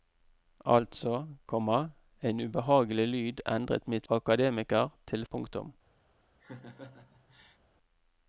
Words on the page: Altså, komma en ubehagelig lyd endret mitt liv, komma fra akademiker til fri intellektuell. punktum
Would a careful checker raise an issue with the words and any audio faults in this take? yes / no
yes